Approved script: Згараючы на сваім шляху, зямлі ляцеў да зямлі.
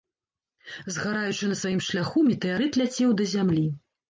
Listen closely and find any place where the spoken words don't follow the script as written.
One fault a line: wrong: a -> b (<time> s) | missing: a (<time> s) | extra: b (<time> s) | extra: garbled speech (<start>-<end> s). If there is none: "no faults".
wrong: зямлі -> метэарыт (2.3 s)